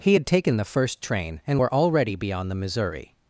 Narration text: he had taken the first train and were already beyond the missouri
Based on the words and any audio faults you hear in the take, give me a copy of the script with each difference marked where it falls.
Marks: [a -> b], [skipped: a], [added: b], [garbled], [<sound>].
he had taken the first train and were already beyond the missouri